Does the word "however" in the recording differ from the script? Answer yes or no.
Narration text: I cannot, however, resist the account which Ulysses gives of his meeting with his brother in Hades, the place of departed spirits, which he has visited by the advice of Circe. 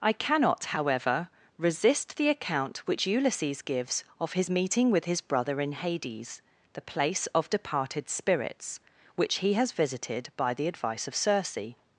no